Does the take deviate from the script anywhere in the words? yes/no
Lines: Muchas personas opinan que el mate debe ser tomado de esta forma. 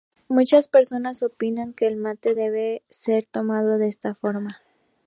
no